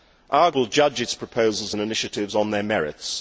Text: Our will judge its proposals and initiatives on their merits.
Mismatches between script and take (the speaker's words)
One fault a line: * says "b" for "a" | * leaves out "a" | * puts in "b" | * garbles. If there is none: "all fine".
all fine